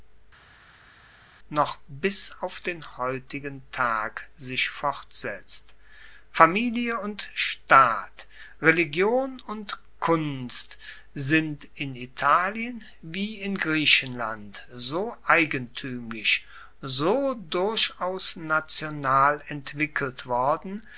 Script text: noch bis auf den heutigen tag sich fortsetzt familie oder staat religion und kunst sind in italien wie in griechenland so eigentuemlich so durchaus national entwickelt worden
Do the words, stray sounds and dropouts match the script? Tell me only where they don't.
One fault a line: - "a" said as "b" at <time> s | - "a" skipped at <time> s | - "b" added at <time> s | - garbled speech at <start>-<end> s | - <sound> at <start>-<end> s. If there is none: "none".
- "oder" said as "und" at 7.0 s